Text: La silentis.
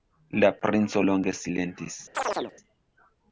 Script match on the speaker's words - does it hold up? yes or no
no